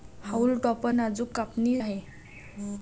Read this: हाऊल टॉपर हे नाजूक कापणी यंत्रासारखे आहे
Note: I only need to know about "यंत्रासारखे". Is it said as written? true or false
false